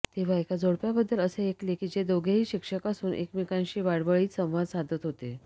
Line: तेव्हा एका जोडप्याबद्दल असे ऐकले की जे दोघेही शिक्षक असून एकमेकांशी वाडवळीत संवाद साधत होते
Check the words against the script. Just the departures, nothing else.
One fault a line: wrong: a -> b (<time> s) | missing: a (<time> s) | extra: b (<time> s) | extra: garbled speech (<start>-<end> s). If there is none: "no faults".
no faults